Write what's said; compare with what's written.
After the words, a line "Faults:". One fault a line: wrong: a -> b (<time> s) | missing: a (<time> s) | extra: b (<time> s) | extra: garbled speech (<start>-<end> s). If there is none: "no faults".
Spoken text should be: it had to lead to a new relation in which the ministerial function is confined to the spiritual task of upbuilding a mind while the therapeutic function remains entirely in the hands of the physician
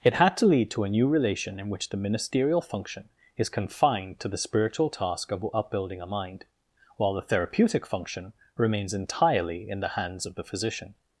it had to lead to a new relation in which the ministerial function is confined to the spiritual task of upbuilding a mind while the therapeutic function remains entirely in the hands of the physician
Faults:
no faults